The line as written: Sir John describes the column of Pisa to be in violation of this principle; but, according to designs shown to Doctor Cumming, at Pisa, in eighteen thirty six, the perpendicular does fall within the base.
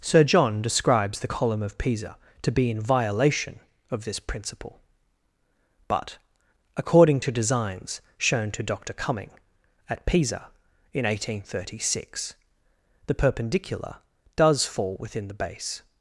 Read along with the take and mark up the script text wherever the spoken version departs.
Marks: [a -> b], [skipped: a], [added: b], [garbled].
Sir John describes the column of Pisa to be in violation of this principle; but, according to designs shown to Doctor Cumming, at Pisa, in eighteen thirty six, the perpendicular does fall within the base.